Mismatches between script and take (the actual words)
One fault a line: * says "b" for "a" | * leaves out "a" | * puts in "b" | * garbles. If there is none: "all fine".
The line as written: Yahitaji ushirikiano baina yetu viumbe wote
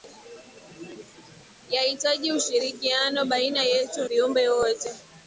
all fine